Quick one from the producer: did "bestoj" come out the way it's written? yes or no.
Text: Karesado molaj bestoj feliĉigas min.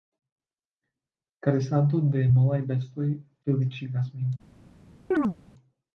yes